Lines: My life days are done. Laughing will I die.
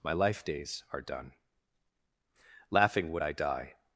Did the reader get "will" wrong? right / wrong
wrong